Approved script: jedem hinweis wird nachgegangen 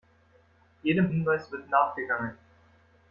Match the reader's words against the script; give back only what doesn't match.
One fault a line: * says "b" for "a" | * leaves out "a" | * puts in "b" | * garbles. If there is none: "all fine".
all fine